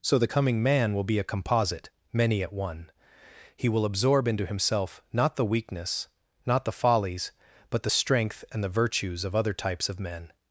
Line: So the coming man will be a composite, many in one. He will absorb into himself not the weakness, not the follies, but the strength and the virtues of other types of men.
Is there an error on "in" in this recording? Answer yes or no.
yes